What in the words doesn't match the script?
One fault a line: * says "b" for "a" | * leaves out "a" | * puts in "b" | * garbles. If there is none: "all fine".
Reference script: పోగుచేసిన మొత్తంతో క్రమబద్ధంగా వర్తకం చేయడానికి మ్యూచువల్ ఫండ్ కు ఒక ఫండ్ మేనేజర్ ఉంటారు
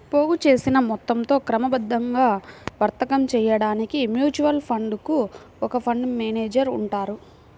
all fine